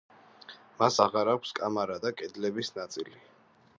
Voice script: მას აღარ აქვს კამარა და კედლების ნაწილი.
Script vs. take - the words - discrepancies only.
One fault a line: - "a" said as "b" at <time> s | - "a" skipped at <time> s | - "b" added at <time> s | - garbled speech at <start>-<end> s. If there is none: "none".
none